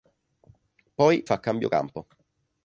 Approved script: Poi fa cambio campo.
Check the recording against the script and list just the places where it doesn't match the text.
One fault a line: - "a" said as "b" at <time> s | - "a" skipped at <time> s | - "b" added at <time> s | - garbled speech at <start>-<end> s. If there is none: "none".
none